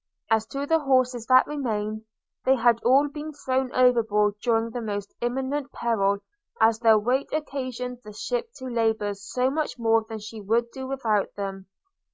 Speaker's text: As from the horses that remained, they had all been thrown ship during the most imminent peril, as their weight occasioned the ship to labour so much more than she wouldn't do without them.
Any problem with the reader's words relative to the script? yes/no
yes